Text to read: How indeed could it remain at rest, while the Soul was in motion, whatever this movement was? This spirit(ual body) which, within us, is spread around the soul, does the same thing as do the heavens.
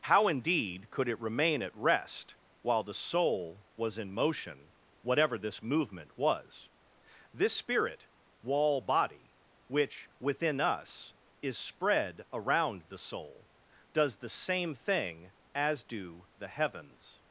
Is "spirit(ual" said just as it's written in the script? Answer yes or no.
no